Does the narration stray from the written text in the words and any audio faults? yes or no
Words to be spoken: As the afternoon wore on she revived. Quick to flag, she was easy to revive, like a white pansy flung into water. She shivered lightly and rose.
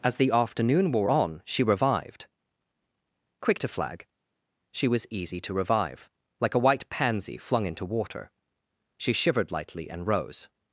no